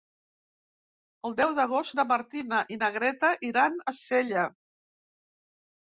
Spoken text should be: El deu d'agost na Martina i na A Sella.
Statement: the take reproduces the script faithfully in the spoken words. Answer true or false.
false